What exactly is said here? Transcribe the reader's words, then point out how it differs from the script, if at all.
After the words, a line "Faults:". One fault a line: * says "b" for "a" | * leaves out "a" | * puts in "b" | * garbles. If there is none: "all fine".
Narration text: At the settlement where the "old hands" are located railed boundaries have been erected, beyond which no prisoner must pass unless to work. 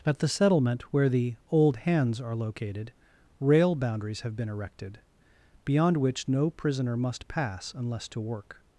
At the settlement where the "old hands" are located rail boundaries have been erected, beyond which no prisoner must pass unless to work.
Faults:
* says "rail" for "railed"